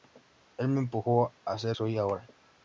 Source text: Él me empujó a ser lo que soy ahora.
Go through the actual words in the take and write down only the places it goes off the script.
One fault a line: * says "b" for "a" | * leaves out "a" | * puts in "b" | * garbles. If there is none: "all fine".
* leaves out "lo que"